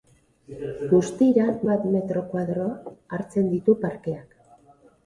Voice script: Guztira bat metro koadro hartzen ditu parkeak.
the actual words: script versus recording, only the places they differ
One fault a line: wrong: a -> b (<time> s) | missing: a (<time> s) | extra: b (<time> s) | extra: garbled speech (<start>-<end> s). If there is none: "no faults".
no faults